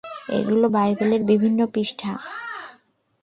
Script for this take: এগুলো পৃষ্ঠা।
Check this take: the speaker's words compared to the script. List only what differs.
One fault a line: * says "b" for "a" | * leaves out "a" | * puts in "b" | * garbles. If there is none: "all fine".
* puts in "বাইবেলের বিভিন্ন"